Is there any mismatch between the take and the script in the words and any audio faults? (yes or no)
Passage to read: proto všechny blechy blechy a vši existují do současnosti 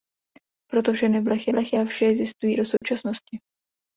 yes